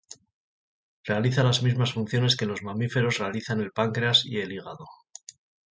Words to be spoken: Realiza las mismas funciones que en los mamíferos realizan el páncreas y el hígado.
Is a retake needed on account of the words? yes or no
no